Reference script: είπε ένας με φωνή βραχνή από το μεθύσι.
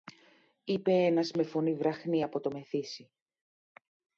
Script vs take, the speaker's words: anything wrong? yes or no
no